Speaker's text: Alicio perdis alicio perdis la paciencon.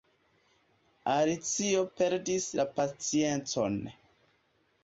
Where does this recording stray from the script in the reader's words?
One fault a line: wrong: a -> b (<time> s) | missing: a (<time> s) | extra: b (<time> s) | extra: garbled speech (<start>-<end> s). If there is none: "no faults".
missing: alicio perdis (2.5 s)